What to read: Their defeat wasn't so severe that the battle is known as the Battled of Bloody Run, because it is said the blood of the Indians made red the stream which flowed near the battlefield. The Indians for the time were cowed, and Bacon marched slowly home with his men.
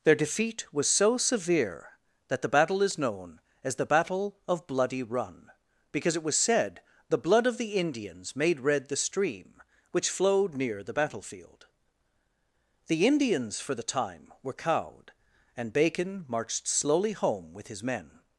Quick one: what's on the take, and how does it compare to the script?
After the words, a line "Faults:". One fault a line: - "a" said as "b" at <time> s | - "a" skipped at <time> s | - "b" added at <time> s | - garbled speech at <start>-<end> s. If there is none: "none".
Their defeat was so severe that the battle is known as the Battle of Bloody Run, because it was said the blood of the Indians made red the stream which flowed near the battlefield. The Indians for the time were cowed, and Bacon marched slowly home with his men.
Faults:
- "wasn't" said as "was" at 0.7 s
- "Battled" said as "Battle" at 3.8 s
- "is" said as "was" at 6.2 s